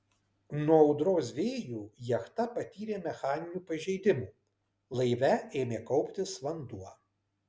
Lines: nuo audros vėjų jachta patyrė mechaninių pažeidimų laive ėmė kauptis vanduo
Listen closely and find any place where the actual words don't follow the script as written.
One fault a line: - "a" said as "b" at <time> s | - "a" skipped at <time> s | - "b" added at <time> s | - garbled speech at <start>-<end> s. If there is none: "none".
none